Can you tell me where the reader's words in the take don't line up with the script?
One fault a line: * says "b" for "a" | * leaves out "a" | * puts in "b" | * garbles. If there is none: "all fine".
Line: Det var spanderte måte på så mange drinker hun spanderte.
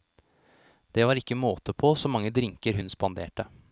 * says "ikke" for "spanderte"